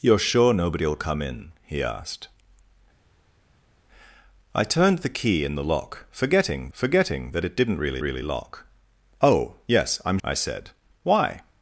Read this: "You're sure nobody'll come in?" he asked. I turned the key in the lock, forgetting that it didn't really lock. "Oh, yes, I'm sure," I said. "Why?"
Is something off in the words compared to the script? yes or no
yes